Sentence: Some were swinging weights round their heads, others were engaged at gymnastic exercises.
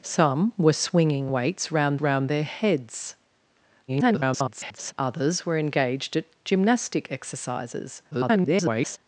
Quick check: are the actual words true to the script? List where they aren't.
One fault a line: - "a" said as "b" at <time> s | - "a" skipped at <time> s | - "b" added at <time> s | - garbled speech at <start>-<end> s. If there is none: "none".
- "round" added at 2.0 s
- garbled speech at 3.9-4.9 s
- garbled speech at 8.1-9.0 s